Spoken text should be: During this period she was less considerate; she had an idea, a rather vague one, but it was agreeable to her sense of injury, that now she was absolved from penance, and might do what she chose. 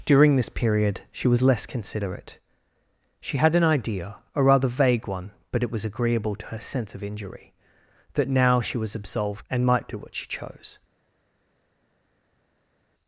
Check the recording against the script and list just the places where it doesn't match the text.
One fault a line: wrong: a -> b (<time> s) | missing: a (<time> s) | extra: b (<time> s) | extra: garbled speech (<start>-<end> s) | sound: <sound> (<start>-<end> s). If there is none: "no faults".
missing: from penance (9.5 s)